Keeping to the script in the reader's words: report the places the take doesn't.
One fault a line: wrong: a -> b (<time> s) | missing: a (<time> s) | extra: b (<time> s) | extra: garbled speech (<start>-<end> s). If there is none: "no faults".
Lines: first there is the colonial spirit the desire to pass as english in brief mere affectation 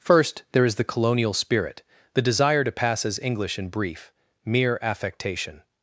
no faults